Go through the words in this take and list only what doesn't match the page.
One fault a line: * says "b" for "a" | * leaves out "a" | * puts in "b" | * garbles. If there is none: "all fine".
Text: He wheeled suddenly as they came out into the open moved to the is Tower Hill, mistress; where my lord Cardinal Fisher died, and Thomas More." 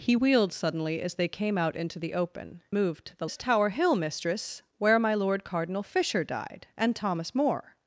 all fine